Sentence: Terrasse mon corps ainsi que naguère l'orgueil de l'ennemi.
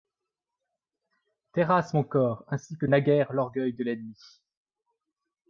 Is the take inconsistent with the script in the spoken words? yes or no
no